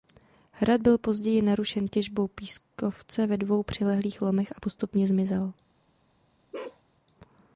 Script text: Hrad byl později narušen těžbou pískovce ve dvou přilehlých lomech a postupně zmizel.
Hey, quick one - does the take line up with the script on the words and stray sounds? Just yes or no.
no